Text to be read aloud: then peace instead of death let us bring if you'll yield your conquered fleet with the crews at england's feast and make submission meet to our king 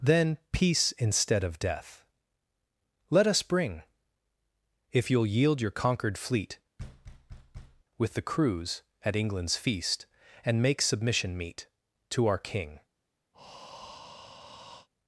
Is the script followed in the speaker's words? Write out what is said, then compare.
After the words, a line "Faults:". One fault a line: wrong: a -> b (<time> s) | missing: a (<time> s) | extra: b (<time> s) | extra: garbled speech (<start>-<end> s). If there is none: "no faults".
then peace instead of death let us bring if you'll yield your conquered fleet with the crews at england's feast and make submission meet to our king
Faults:
no faults